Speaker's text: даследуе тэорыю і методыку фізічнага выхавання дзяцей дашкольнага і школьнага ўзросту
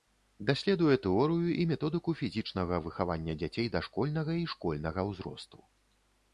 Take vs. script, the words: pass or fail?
pass